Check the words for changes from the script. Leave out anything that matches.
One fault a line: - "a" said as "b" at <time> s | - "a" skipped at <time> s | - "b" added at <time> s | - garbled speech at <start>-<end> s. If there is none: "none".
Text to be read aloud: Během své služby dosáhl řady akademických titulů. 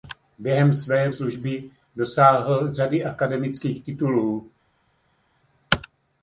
none